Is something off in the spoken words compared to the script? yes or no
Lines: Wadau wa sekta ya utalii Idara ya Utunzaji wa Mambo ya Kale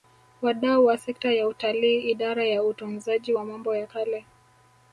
no